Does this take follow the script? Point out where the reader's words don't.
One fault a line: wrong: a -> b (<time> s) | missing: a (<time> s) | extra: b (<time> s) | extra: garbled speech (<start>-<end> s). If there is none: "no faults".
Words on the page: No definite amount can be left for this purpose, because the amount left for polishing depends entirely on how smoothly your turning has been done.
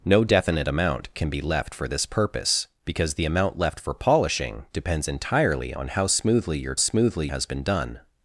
wrong: turning -> smoothly (6.8 s)